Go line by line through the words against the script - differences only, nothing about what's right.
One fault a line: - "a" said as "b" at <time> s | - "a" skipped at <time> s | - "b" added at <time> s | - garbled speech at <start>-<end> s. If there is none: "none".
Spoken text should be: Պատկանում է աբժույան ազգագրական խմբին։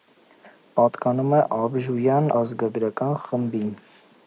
none